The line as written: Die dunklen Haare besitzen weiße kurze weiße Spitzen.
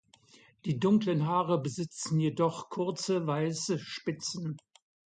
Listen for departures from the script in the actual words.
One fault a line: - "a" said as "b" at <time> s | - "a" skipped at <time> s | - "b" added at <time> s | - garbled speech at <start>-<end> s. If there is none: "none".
- "weiße" said as "jedoch" at 2.2 s